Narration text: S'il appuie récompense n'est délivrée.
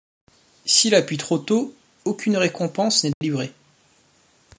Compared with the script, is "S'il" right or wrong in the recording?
right